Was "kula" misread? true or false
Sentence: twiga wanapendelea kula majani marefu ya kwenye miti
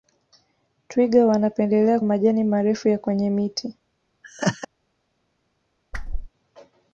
true